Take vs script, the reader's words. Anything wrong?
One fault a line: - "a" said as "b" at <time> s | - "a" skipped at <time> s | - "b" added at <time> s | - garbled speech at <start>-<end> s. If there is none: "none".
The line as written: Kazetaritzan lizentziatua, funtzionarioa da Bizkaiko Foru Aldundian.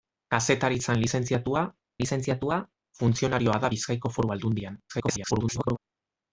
- "lizentziatua" added at 2.0 s
- garbled speech at 4.9-5.8 s